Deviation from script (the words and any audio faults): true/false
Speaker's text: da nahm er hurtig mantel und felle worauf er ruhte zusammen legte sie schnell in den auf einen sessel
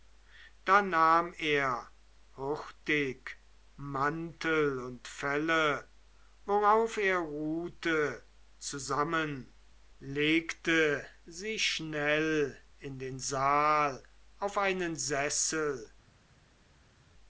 true